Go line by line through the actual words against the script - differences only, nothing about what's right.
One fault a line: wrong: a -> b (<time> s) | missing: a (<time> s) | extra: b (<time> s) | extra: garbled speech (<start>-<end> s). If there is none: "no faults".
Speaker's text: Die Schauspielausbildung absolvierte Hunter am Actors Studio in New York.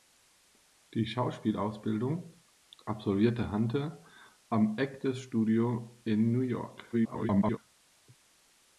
extra: garbled speech (6.9-7.6 s)